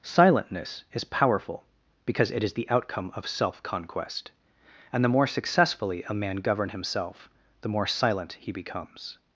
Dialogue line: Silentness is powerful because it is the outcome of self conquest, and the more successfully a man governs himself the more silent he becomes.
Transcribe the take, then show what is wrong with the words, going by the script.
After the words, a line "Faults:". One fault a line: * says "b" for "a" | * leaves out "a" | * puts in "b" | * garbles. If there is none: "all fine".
Silentness is powerful because it is the outcome of self conquest, and the more successfully a man govern himself the more silent he becomes.
Faults:
* says "govern" for "governs"